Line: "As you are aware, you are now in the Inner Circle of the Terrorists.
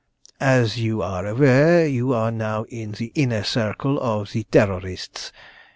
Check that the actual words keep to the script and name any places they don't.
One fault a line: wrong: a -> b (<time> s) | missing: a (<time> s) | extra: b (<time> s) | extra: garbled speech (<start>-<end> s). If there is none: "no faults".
no faults